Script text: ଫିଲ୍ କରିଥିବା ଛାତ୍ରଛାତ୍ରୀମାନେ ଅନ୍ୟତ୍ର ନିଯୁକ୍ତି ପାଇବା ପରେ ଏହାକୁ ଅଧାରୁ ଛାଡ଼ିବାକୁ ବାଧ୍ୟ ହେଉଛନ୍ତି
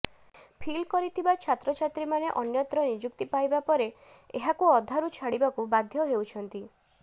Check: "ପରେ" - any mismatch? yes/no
no